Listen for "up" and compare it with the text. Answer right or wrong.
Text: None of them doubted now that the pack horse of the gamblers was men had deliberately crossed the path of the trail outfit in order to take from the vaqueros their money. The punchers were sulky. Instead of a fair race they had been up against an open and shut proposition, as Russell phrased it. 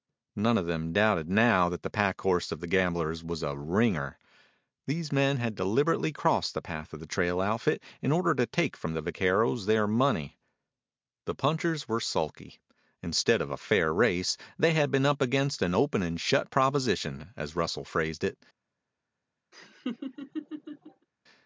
right